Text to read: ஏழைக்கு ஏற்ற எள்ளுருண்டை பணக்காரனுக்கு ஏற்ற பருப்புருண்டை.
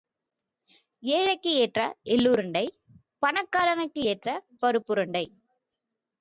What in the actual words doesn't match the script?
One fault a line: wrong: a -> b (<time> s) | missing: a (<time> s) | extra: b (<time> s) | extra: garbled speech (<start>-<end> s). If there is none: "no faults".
no faults